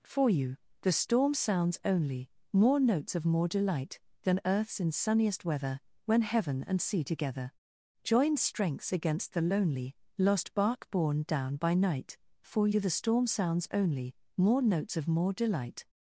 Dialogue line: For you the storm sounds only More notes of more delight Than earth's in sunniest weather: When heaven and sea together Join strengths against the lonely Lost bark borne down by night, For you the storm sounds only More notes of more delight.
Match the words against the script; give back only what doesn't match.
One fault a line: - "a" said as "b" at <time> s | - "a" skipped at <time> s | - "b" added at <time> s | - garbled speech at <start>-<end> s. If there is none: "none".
none